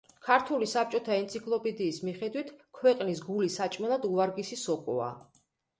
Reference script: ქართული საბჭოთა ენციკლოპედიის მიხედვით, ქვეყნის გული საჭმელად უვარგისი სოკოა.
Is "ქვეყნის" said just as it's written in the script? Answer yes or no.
yes